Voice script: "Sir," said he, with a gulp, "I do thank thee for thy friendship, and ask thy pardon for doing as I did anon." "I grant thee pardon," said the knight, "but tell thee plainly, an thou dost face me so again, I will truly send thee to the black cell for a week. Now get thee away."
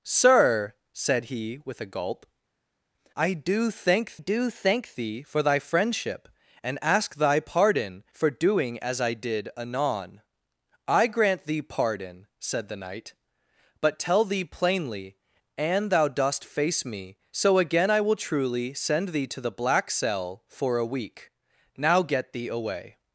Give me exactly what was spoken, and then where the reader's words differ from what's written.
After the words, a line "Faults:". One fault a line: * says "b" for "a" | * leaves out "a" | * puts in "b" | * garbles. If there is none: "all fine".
"Sir," said he, with a gulp, "I do thank do thank thee for thy friendship, and ask thy pardon for doing as I did anon." "I grant thee pardon," said the knight, "but tell thee plainly, an thou dost face me so again, I will truly send thee to the black cell for a week. Now get thee away."
Faults:
* puts in "do thank"